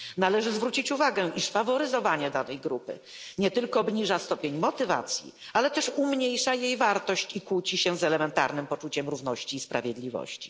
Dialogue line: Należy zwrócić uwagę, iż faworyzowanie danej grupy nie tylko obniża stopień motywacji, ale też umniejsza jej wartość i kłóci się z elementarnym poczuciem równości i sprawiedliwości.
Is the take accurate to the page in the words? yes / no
yes